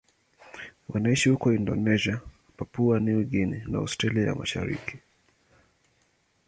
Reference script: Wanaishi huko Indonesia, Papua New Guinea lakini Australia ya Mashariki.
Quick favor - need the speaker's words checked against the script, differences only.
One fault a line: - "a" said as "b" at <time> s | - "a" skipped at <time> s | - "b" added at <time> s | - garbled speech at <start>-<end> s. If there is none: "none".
- "lakini" said as "na" at 3.7 s